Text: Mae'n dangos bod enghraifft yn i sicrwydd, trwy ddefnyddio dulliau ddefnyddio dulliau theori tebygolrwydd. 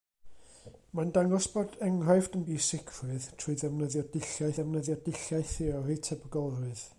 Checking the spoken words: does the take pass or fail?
pass